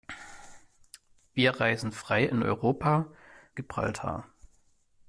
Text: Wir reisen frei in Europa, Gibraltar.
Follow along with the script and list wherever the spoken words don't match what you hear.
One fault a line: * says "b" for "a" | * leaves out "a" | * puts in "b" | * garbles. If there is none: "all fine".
all fine